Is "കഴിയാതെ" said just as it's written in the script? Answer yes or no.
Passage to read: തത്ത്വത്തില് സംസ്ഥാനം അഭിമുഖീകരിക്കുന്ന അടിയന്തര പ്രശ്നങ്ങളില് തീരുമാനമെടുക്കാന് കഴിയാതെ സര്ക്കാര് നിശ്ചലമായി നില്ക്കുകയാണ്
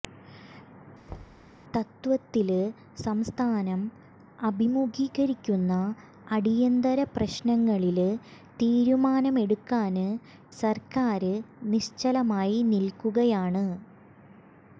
no